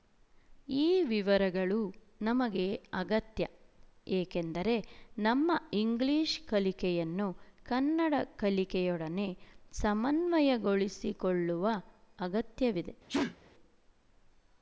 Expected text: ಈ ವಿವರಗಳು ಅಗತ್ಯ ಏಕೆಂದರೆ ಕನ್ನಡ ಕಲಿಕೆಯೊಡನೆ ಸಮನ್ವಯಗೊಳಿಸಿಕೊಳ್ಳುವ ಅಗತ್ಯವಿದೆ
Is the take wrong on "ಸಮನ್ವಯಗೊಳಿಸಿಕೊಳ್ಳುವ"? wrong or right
right